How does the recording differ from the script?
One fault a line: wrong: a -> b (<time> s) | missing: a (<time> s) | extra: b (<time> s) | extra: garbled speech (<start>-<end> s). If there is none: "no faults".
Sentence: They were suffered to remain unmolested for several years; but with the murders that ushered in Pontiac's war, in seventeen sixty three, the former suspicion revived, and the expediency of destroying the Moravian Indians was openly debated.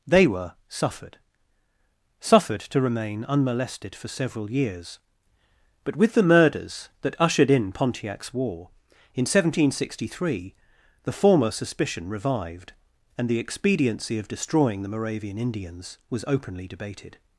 extra: suffered (2.2 s)